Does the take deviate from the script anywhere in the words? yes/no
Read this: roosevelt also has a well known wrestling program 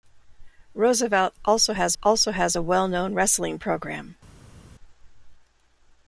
yes